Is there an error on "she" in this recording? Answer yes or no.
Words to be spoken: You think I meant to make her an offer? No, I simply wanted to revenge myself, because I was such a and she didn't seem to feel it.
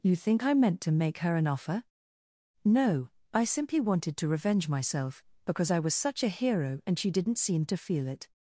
no